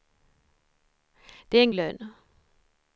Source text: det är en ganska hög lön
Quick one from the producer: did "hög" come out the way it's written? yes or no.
no